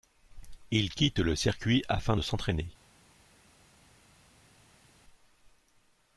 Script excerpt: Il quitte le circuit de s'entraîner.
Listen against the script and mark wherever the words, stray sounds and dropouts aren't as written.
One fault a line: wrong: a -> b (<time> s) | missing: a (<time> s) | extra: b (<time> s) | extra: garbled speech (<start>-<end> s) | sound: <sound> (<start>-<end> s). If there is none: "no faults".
extra: afin (1.9 s)